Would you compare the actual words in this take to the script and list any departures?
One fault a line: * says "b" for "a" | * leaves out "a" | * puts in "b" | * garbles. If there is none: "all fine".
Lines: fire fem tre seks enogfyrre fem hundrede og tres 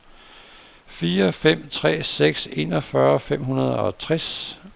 all fine